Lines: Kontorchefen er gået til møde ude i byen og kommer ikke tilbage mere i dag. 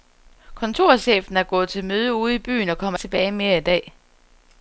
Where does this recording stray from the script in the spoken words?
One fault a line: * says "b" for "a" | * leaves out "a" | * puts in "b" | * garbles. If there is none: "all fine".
* leaves out "ikke"